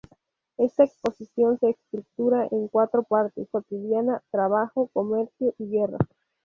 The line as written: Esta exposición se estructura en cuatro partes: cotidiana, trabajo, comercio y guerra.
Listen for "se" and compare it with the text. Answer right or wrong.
right